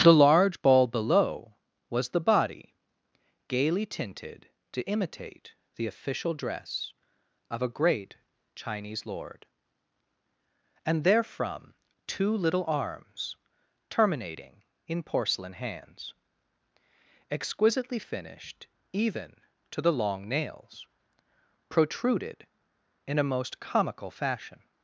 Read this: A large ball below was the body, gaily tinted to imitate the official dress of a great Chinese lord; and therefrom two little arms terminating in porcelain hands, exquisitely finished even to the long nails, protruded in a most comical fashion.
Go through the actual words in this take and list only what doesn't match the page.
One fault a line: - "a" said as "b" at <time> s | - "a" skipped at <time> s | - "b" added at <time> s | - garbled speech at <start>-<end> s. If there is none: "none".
- "A" said as "The" at 0.0 s